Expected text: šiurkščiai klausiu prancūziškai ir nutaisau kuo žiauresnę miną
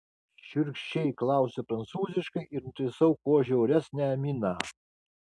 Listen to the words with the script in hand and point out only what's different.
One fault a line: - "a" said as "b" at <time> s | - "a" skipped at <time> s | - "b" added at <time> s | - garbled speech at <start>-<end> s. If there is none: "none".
none